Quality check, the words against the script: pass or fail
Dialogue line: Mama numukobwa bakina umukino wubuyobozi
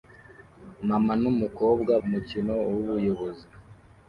fail